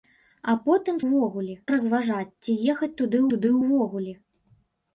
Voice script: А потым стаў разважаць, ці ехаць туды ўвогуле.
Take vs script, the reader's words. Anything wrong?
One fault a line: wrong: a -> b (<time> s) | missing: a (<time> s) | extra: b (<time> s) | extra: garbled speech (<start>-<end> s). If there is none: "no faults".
wrong: стаў -> ўвогуле (1.0 s)
extra: туды (3.3 s)